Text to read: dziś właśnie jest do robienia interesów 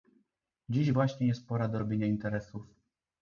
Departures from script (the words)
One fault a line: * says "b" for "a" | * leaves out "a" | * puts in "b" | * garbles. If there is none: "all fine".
* puts in "pora"